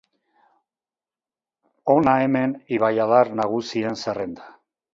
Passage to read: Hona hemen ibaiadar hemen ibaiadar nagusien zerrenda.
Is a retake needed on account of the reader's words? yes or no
yes